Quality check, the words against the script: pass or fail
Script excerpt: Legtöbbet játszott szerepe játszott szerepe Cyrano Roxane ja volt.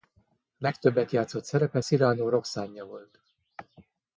fail